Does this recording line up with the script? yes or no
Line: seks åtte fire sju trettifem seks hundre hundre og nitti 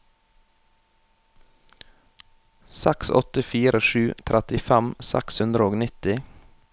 no